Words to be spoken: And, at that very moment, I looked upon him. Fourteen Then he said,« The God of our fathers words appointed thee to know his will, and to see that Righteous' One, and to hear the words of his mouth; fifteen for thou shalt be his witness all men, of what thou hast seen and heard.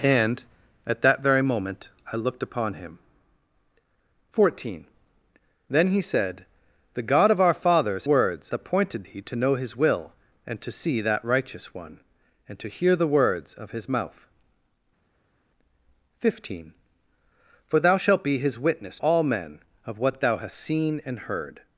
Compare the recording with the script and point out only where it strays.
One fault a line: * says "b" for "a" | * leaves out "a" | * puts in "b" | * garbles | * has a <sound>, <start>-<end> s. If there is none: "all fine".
all fine